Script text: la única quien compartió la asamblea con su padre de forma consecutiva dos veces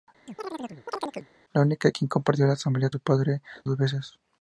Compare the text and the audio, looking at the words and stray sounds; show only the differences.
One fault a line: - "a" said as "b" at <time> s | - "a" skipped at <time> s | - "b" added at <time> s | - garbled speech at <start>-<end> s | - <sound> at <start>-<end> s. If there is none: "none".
- chirp at 0.3-1.3 s
- "con" skipped at 2.9 s
- "de forma consecutiva" skipped at 3.4 s